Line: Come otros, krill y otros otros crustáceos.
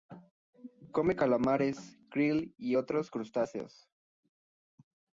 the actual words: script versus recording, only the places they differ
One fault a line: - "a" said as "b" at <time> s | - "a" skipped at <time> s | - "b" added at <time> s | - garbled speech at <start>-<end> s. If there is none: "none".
- "otros" said as "calamares" at 1.1 s
- "otros" skipped at 3.1 s